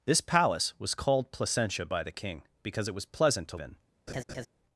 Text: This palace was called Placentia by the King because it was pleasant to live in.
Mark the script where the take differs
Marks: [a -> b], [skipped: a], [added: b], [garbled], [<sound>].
This palace was called Placentia by the King because it was pleasant to [skipped: live] in. [laugh]